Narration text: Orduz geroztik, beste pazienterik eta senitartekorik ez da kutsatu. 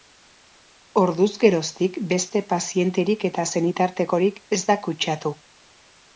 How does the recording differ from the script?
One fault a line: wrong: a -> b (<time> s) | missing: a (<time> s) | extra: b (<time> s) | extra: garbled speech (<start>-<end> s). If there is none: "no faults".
no faults